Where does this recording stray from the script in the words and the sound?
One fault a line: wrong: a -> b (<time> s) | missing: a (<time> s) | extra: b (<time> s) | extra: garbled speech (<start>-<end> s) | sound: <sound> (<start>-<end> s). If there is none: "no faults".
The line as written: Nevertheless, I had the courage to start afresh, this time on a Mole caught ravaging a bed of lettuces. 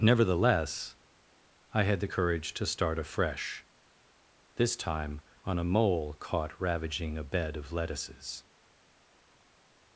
no faults